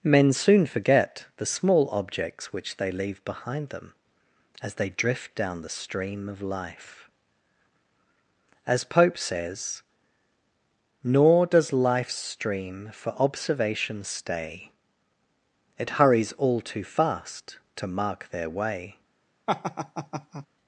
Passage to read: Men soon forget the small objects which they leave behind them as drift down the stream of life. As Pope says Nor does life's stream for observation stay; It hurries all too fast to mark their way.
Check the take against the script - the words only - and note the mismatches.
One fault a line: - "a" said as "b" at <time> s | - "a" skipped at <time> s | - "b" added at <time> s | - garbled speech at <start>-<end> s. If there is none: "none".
- "they" added at 4.8 s